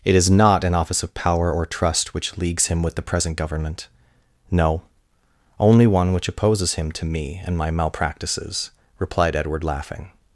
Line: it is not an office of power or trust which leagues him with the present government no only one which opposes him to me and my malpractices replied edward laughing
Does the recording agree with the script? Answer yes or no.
yes